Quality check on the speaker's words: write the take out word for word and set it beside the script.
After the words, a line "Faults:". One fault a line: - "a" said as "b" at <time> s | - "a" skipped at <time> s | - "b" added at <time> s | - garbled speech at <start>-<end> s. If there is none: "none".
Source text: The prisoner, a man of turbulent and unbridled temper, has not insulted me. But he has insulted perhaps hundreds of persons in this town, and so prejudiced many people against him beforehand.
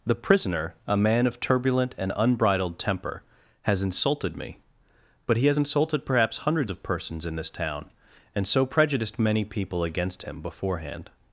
The prisoner, a man of turbulent and unbridled temper, has insulted me. But he has insulted perhaps hundreds of persons in this town, and so prejudiced many people against him beforehand.
Faults:
- "not" skipped at 3.8 s